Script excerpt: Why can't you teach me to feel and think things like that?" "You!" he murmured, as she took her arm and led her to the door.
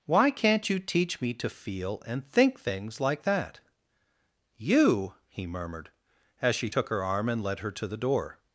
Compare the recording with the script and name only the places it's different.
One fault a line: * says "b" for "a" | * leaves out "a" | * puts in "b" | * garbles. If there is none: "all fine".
all fine